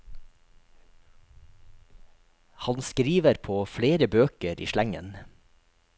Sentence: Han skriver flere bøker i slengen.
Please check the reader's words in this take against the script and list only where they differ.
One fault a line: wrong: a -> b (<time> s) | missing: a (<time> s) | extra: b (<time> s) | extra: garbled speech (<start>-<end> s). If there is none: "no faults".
extra: på (3.4 s)